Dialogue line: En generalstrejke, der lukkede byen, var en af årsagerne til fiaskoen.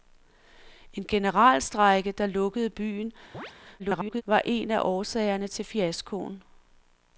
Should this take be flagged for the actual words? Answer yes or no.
yes